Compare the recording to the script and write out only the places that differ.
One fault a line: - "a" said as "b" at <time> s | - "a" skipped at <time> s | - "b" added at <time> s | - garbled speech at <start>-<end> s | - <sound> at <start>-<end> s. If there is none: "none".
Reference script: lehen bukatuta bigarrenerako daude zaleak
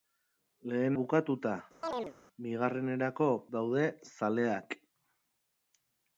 - chirp at 1.8-2.2 s